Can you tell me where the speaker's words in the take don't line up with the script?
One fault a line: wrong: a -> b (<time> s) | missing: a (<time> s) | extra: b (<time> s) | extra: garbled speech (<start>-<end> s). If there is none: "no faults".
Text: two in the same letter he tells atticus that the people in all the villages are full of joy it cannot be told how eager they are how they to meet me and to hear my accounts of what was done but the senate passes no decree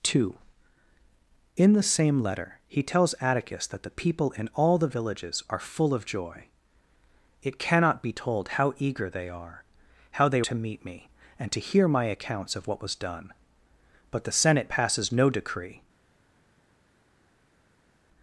no faults